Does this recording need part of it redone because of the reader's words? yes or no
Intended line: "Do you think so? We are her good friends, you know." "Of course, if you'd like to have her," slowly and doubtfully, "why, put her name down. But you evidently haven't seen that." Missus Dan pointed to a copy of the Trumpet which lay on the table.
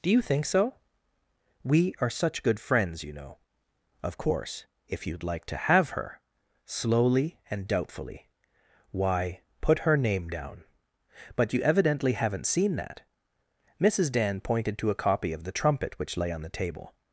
yes